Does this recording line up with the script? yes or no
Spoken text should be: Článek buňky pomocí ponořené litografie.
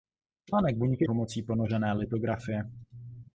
yes